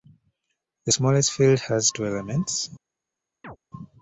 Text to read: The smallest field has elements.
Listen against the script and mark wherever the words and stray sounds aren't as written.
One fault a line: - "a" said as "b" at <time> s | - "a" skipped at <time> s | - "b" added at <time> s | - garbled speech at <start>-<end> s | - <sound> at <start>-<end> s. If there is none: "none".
- "two" added at 1.9 s
- chirp at 3.4-3.6 s